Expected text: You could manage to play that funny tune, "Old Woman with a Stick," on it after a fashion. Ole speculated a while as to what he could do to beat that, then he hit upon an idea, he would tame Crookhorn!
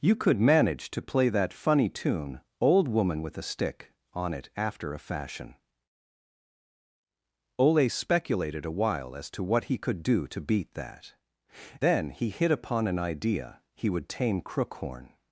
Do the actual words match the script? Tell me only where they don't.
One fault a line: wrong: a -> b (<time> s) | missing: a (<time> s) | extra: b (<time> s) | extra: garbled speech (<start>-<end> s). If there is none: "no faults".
no faults